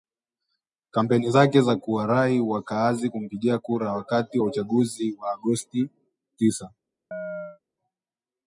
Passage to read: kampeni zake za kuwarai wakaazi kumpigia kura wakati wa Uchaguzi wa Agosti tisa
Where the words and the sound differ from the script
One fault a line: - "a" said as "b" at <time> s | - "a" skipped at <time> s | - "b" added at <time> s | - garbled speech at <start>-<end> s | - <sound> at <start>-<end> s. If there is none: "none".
- chirp at 7.1-7.6 s